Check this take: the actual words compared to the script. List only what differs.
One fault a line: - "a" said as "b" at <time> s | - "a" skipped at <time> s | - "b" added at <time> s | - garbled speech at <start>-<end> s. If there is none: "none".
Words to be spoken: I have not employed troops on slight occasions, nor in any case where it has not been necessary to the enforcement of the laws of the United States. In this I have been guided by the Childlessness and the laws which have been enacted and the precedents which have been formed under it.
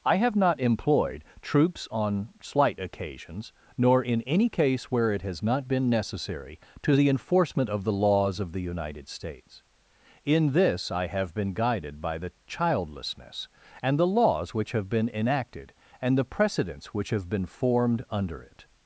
none